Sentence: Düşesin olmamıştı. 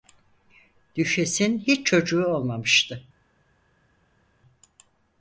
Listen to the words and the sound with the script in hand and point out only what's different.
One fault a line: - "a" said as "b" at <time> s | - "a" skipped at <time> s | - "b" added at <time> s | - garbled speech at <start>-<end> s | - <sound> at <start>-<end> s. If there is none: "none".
- "hiç çocuğu" added at 1.6 s